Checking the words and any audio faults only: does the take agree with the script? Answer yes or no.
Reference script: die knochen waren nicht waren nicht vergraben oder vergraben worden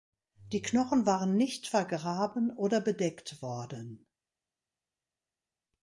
no